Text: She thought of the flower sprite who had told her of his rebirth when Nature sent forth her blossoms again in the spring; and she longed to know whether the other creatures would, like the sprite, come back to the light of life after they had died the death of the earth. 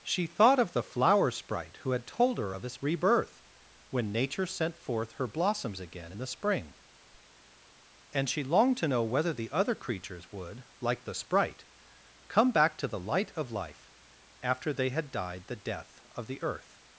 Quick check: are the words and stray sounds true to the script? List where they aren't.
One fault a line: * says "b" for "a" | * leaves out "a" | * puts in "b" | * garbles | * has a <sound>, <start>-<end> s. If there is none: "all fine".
all fine